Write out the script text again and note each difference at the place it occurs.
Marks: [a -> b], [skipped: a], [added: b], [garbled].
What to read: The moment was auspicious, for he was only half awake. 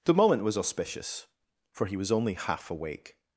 The moment was auspicious, for he was only half awake.